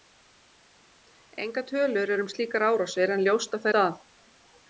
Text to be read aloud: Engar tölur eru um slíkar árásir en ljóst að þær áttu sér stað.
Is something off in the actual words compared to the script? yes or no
yes